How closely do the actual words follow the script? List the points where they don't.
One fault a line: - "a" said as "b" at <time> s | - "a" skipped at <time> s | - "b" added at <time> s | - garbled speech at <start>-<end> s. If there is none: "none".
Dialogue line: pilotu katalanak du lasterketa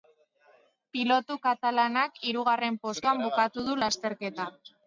- "hirugarren postuan bukatu" added at 2.3 s